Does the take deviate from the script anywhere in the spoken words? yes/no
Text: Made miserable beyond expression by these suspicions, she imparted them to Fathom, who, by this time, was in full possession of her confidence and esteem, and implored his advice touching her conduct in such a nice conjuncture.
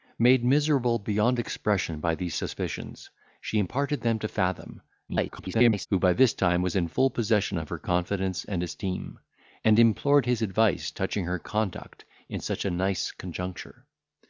yes